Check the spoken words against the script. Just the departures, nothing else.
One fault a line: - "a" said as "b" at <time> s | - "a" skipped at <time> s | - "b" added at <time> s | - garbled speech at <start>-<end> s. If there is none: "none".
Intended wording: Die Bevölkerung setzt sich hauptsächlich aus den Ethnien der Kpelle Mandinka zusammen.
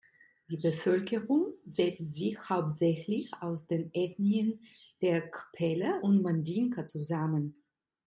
- "und" added at 6.0 s